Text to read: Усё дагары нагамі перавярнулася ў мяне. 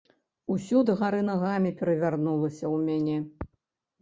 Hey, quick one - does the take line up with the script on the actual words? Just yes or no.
yes